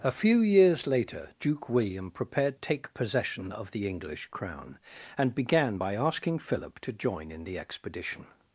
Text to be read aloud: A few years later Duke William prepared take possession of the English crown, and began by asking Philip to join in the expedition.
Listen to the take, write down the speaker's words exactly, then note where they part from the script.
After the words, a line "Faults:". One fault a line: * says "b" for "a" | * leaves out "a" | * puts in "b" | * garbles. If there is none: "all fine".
A few years later Duke William prepared take possession of the English crown, and began by asking Philip to join in the expedition.
Faults:
all fine